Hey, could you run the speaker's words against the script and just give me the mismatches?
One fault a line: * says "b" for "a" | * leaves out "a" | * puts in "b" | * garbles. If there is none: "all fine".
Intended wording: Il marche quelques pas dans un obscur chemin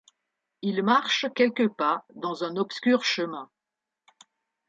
all fine